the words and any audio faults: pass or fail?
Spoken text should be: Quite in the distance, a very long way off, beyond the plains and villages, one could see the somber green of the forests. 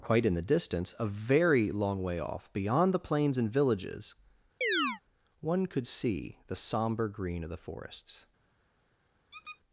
fail